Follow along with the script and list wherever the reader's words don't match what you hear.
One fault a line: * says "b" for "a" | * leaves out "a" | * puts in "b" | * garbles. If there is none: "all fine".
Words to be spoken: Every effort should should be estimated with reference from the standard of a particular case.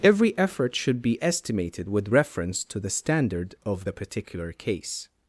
* leaves out "should"
* says "to" for "from"
* says "the" for "a"